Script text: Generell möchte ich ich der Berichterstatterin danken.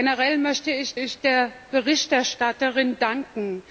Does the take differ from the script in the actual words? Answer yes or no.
no